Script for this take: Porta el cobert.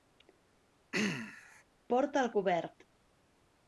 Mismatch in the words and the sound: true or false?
true